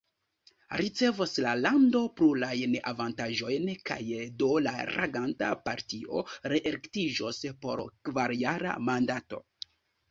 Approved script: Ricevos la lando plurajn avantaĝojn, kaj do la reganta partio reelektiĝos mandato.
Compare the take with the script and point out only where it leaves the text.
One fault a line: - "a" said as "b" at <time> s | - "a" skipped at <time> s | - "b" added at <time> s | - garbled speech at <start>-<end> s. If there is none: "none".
- "por kvarjara" added at 7.7 s